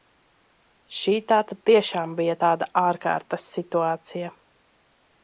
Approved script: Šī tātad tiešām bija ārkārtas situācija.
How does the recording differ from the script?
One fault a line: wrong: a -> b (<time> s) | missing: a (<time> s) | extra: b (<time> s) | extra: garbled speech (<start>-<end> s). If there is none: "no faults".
extra: tāda (2.4 s)